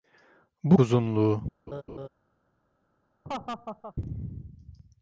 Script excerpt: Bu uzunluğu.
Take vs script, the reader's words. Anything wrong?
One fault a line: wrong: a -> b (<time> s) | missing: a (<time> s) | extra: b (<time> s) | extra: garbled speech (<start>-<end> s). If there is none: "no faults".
no faults